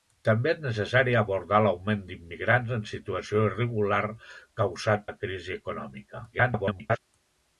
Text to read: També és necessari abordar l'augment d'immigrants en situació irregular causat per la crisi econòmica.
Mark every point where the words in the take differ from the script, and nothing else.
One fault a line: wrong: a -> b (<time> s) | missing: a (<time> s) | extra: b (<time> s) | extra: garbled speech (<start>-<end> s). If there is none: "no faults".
missing: per (5.1 s)
extra: garbled speech (6.3-7.0 s)